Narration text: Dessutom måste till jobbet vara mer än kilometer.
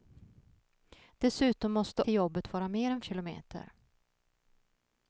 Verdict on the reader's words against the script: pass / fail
pass